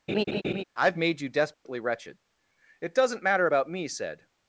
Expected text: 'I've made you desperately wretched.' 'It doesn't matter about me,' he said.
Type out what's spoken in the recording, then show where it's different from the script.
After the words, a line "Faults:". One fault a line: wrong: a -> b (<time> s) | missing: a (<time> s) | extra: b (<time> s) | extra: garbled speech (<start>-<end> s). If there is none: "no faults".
'I've made you desperately wretched.' 'It doesn't matter about me,' said.
Faults:
missing: he (3.9 s)